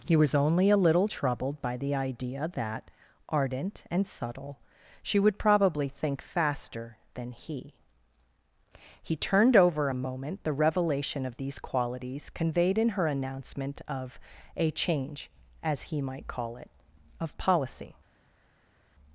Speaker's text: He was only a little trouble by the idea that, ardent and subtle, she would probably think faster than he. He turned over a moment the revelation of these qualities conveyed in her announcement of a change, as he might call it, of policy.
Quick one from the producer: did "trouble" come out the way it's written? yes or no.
no